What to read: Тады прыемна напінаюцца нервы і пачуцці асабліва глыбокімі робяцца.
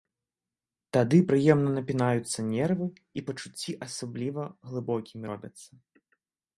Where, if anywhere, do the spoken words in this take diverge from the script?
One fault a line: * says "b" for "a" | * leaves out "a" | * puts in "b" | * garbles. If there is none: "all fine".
all fine